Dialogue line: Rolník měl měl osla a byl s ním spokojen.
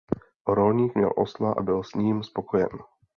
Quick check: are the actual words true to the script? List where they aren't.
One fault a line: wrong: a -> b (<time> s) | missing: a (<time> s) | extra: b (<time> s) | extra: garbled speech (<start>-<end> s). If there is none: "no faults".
missing: měl (1.1 s)